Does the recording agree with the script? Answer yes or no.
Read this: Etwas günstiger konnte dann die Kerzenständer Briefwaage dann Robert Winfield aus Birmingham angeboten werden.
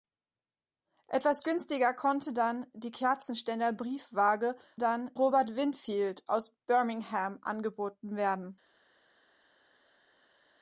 yes